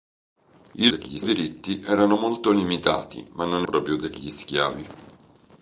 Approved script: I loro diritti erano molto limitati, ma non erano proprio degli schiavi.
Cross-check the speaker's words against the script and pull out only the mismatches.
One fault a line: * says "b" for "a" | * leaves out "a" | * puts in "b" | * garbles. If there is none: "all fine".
* says "degli" for "loro"
* leaves out "erano"